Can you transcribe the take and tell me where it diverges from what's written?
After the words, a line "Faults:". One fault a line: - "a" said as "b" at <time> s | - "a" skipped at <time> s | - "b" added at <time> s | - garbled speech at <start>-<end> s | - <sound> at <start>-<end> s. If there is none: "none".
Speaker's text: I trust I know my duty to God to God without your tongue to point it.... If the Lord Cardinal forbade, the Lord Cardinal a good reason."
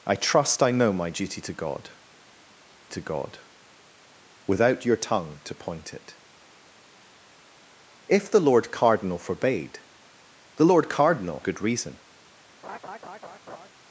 I trust I know my duty to God to God without your tongue to point it.... If the Lord Cardinal forbade, the Lord Cardinal a good reason."
Faults:
- laugh at 12.6-13.7 s